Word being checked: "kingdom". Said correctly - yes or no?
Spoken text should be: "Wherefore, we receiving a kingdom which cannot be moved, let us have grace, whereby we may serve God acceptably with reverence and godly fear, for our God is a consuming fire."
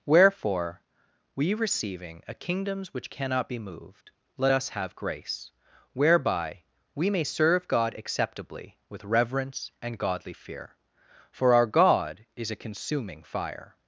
no